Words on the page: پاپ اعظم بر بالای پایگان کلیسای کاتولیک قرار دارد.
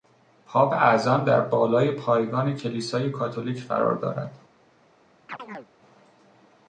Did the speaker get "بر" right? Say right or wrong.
wrong